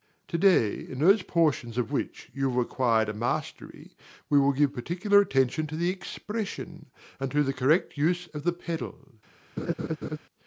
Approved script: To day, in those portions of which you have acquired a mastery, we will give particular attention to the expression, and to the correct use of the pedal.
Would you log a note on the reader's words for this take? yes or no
no